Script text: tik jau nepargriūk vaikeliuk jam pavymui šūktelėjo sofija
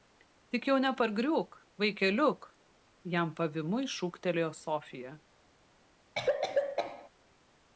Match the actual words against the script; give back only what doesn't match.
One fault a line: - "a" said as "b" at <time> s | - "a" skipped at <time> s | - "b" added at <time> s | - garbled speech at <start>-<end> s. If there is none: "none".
none